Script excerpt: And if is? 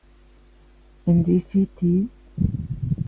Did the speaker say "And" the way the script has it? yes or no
yes